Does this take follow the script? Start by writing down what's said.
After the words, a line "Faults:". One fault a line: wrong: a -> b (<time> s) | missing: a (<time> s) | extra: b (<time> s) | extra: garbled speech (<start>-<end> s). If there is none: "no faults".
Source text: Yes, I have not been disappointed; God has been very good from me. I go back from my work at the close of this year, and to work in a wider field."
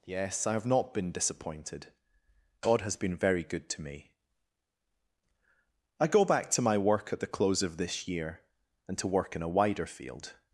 Yes, I have not been disappointed; God has been very good to me. I go back to my work at the close of this year, and to work in a wider field."
Faults:
wrong: from -> to (3.7 s)
wrong: from -> to (6.5 s)